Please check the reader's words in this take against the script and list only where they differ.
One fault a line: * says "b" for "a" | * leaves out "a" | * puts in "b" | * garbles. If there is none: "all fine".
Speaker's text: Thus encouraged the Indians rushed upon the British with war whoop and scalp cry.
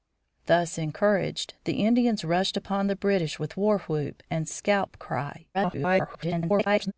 * garbles